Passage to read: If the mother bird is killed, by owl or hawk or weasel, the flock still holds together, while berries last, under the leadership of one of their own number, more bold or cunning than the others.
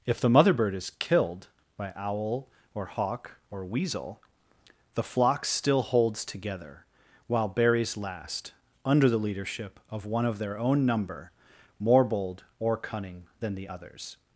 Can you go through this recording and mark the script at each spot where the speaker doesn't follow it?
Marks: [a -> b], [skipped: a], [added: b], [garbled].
If the mother bird is killed, by owl or hawk or weasel, the flock still holds together, while berries last, under the leadership of one of their own number, more bold or cunning than the others.